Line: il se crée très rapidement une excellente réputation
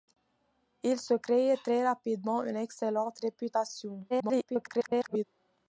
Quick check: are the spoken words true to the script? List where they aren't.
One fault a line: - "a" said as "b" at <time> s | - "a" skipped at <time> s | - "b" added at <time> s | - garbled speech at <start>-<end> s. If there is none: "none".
- garbled speech at 4.1-5.2 s